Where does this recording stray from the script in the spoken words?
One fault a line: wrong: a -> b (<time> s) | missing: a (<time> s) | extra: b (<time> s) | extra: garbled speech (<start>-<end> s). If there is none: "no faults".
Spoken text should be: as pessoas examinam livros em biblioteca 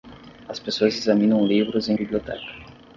no faults